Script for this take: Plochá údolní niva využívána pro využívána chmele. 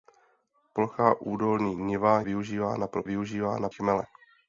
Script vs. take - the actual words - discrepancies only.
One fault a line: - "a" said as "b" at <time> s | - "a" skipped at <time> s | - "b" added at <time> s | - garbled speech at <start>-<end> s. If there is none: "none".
none